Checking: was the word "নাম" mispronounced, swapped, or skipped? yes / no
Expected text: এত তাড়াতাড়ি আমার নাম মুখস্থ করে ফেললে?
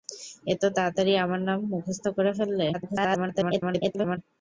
no